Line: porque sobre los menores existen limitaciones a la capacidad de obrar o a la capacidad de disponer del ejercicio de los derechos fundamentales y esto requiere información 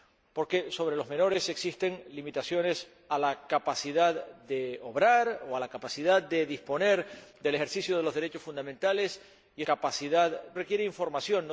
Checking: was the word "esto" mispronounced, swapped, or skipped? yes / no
yes